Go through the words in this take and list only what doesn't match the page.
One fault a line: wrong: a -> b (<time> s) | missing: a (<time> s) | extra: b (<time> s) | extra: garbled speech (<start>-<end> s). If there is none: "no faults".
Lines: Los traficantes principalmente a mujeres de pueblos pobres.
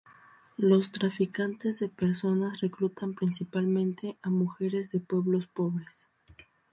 extra: de personas reclutan (1.8 s)